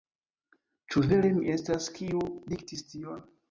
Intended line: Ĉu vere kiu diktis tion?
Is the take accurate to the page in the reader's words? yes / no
no